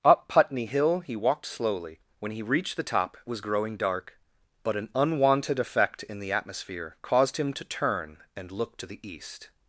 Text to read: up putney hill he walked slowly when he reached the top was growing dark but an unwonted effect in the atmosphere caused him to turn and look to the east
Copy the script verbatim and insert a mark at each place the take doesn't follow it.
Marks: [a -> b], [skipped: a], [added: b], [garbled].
up putney hill he walked slowly when he reached the top was growing dark but an unwonted effect in the atmosphere caused him to turn and look to the east